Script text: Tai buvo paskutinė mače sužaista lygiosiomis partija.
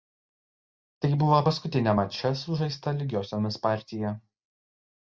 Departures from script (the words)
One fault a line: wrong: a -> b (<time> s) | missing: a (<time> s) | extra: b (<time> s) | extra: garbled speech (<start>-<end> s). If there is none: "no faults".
no faults